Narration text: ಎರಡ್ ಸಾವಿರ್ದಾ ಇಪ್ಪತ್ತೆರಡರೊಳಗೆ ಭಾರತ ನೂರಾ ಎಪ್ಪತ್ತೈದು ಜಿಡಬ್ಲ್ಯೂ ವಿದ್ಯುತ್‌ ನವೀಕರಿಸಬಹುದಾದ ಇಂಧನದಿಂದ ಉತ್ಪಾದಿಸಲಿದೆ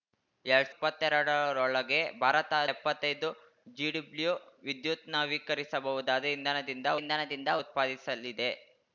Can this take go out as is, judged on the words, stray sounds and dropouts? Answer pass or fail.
fail